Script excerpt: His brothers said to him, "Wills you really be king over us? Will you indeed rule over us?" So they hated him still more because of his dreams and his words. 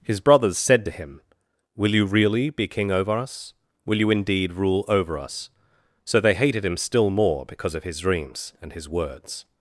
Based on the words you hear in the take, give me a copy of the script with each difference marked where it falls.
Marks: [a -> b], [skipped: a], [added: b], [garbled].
His brothers said to him, ["Wills -> Will] you really be king over us? Will you indeed rule over us?" So they hated him still more because of his dreams and his words.